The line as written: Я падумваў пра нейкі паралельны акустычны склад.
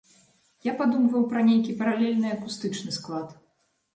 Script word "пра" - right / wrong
right